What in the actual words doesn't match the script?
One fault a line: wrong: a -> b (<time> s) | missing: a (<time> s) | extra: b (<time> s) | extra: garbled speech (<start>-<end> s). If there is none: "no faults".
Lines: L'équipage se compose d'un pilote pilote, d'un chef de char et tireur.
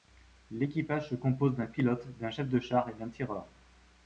missing: pilote (2.1 s)
extra: d'un (2.9 s)